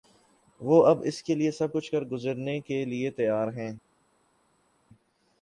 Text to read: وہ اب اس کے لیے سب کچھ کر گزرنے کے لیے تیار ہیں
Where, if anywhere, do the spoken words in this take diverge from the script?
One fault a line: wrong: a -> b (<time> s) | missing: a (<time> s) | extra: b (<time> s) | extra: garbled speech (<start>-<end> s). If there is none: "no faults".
no faults